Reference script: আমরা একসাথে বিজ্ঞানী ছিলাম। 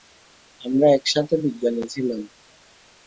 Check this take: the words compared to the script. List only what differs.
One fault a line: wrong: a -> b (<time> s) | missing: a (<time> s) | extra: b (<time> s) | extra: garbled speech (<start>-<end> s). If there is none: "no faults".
no faults